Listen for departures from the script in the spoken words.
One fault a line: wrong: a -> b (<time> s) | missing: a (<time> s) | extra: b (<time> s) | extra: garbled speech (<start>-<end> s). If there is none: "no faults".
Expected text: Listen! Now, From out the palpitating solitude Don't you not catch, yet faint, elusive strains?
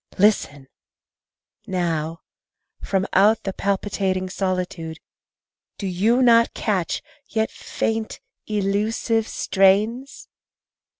wrong: Don't -> Do (5.8 s)